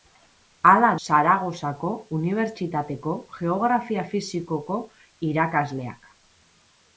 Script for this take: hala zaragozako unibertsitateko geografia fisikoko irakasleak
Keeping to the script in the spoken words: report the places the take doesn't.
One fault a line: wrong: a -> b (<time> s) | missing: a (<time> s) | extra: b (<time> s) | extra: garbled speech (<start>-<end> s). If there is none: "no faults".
no faults